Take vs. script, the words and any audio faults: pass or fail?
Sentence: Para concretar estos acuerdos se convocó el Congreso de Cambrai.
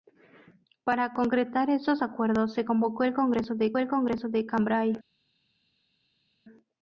fail